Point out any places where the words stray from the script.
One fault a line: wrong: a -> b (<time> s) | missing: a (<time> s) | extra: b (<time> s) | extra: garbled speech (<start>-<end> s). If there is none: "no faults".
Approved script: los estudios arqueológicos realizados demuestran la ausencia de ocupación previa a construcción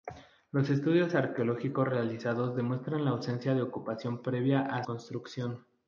no faults